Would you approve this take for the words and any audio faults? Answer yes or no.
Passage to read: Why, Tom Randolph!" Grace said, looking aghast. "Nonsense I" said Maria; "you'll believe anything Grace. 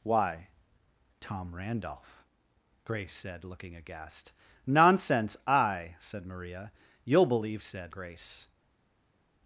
no